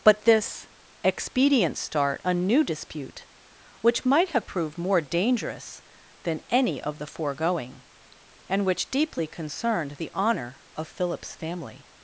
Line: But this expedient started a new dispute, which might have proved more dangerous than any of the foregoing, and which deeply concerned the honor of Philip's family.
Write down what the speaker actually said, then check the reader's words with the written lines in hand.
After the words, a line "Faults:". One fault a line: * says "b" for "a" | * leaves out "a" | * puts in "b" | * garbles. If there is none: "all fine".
But this expedient start a new dispute, which might have proved more dangerous than any of the foregoing, and which deeply concerned the honor of Philip's family.
Faults:
* says "start" for "started"